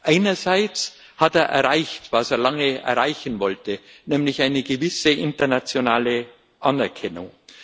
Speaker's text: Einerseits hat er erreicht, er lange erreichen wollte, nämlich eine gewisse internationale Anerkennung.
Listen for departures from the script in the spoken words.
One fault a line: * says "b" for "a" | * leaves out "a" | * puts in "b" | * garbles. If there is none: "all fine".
* puts in "was"